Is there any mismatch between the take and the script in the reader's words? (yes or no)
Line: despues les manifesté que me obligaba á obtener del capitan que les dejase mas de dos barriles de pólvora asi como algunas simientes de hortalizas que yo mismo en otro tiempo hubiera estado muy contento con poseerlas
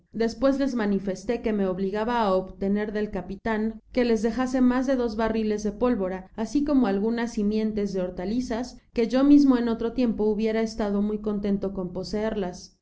no